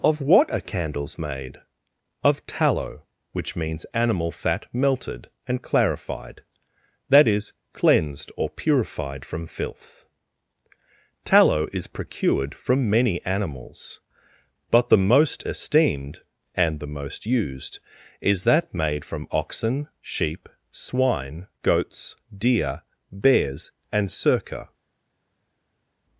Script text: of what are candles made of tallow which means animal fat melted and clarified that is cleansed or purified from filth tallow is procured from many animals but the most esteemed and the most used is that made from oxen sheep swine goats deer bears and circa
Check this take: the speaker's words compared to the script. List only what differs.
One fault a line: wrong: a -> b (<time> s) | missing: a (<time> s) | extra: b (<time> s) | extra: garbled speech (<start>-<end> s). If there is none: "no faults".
no faults